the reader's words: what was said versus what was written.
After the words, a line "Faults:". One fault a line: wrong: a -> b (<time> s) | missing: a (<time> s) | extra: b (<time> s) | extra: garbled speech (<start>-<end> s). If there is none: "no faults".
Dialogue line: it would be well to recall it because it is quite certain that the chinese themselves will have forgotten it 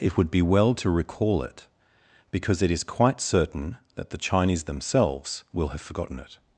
it would be well to recall it because it is quite certain that the chinese themselves will have forgotten it
Faults:
no faults